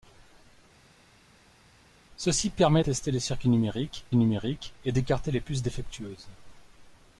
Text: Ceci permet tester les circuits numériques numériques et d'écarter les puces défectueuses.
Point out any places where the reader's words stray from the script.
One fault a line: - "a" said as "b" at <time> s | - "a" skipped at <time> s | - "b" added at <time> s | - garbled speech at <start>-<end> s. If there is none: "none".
none